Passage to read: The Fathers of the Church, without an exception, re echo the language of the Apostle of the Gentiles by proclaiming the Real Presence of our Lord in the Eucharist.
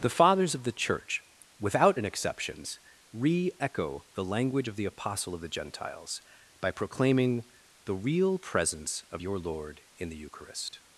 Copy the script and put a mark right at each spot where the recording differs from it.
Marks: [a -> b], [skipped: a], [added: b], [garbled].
The Fathers of the Church, without an [exception, -> exceptions] re echo the language of the Apostle of the Gentiles by proclaiming the Real Presence of [our -> your] Lord in the Eucharist.